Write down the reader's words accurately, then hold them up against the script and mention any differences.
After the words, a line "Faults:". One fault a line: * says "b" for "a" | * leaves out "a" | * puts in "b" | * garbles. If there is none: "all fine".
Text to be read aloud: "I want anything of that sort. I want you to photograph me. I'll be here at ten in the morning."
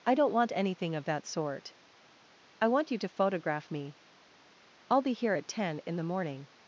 "I don't want anything of that sort. I want you to photograph me. I'll be here at ten in the morning."
Faults:
* puts in "don't"